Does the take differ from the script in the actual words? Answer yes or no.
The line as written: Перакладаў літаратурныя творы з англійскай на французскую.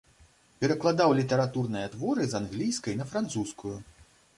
no